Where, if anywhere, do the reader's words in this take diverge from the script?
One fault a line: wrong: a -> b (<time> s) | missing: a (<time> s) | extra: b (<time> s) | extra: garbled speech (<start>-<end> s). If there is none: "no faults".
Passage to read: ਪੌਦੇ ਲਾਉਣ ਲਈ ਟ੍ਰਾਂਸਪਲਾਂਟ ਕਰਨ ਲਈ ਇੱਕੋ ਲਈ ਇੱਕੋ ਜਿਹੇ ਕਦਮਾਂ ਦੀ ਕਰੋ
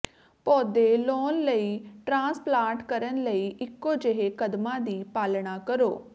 missing: ਲਈ ਇੱਕੋ (3.9 s)
extra: ਪਾਲਣਾ (5.1 s)